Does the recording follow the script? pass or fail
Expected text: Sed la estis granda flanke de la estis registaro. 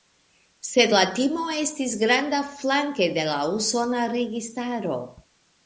fail